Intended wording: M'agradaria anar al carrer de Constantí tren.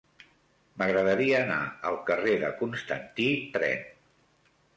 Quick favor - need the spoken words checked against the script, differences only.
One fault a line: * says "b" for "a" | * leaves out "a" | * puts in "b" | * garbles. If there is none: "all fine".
all fine